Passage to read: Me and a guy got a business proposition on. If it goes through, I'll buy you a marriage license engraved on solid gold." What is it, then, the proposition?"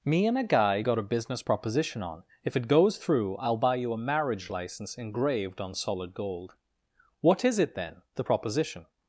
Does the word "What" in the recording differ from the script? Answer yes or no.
no